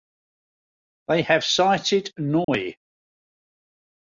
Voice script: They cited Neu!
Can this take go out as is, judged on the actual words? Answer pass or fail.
fail